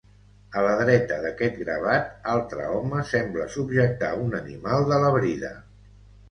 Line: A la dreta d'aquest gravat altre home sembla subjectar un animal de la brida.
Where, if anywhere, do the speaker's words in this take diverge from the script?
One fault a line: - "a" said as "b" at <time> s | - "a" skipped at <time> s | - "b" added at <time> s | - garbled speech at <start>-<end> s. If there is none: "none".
none